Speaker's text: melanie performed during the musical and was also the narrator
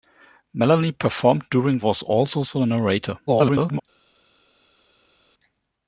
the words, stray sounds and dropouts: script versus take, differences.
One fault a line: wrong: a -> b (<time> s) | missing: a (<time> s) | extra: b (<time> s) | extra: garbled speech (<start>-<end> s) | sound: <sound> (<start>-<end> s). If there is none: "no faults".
missing: the musical and (1.8 s)
extra: garbled speech (3.3-3.8 s)